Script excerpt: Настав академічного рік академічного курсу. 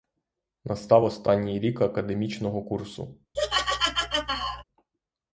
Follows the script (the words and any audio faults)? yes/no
no